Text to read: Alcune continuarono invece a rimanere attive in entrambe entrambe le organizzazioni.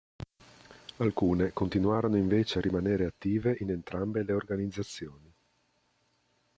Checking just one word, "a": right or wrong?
right